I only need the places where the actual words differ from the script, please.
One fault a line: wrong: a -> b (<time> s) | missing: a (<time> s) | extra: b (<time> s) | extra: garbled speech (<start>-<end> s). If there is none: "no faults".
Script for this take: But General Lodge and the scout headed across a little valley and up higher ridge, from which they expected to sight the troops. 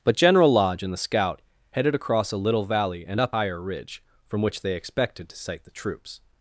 no faults